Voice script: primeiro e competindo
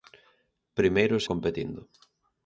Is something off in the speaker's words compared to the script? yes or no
no